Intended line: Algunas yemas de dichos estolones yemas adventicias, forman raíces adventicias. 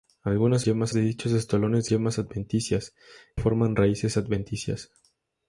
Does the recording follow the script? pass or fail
pass